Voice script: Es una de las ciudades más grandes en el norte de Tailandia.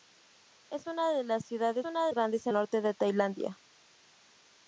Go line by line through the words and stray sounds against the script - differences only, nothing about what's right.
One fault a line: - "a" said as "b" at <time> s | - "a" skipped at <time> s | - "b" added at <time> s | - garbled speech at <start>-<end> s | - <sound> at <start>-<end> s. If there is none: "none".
- "más" said as "una" at 1.8 s
- "el" skipped at 2.5 s